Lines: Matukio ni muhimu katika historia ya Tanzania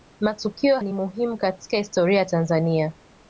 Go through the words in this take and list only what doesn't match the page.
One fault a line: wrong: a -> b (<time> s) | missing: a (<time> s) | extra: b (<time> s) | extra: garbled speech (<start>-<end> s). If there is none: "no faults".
no faults